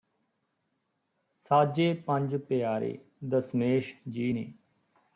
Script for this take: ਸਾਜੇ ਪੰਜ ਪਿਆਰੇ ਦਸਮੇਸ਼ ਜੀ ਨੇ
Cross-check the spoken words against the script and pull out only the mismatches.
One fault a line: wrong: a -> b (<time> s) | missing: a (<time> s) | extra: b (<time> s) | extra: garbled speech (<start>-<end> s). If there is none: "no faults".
no faults